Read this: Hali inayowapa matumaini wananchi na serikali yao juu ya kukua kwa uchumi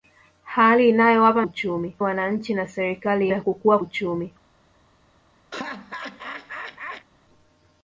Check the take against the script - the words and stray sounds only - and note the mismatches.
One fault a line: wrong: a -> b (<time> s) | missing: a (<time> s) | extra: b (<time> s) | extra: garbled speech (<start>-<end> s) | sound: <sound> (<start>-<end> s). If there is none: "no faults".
wrong: matumaini -> uchumi (1.4 s)
missing: yao juu (3.3 s)
missing: kwa (3.8 s)
sound: laugh (5.5-7.1 s)